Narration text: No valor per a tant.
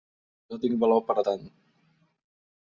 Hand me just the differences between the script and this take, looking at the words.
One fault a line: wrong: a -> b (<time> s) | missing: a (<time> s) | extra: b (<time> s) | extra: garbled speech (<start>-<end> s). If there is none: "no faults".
extra: tinc (0.6 s)